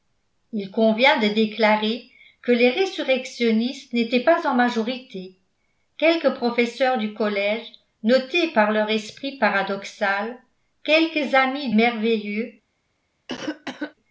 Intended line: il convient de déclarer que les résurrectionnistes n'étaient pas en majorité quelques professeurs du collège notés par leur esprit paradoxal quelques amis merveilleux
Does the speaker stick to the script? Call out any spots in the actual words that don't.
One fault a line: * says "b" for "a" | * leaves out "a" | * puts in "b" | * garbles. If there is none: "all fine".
all fine